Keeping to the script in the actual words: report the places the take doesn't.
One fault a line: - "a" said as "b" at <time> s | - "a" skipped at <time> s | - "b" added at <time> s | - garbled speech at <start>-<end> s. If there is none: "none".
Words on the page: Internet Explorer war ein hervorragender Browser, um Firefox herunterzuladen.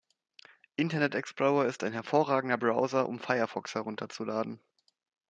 - "war" said as "ist" at 1.7 s